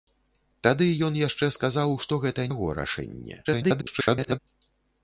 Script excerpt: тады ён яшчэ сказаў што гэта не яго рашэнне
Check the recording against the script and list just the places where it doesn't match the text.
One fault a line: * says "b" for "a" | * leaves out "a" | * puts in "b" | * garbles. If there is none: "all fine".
* leaves out "не"
* garbles